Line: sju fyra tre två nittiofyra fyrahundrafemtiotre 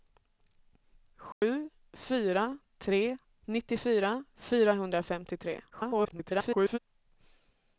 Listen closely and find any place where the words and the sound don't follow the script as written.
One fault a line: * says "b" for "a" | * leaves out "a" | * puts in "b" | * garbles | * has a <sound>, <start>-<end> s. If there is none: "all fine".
* has a dropout, 1.3-1.4 s
* leaves out "två"
* garbles